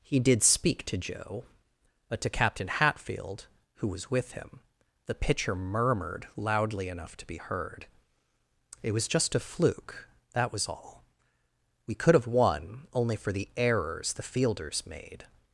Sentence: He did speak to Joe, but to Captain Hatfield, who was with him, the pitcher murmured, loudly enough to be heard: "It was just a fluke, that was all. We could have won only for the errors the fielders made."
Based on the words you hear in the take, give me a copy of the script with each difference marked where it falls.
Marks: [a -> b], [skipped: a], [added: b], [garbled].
He did speak to Joe, but to Captain Hatfield, who was with him, the pitcher murmured, loudly enough to be heard: "It was just a fluke, that was all. We could have won only for the errors the fielders made."